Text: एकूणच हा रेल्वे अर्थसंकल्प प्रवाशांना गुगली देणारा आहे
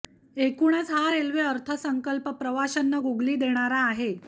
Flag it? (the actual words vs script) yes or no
no